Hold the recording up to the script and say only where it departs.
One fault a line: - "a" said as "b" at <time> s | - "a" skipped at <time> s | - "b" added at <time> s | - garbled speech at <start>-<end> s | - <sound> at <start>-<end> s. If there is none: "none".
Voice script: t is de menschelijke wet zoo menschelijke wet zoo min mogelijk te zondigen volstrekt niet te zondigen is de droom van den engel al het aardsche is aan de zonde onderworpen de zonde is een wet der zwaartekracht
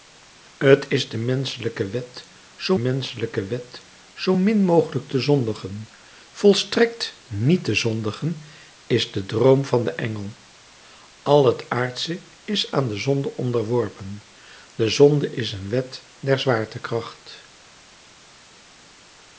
none